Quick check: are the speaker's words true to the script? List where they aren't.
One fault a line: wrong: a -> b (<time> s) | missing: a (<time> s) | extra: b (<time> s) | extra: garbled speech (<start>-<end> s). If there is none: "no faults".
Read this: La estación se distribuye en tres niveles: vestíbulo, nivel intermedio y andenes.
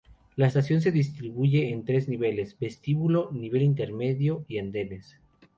no faults